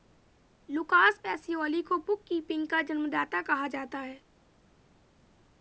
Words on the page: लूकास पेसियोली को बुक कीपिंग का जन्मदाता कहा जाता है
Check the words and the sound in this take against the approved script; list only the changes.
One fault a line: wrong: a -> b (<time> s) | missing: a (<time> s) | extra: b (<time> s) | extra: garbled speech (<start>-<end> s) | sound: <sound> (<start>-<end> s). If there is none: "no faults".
no faults